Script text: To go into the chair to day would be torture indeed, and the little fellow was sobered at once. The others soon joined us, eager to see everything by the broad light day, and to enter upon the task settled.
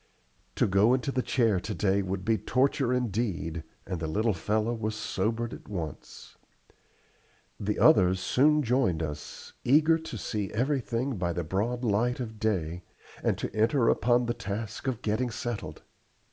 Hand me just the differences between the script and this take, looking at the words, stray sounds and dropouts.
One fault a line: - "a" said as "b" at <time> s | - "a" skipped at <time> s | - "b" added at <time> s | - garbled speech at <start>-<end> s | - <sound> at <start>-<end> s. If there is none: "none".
- "of" added at 12.2 s
- "of getting" added at 14.9 s